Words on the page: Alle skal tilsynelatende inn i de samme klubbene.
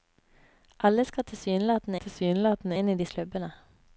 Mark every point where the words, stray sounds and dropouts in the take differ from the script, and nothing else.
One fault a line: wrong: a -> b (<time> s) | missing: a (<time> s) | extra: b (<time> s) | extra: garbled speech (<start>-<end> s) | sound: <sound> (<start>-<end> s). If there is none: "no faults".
extra: tilsynelatende (2.0 s)
missing: samme (3.1 s)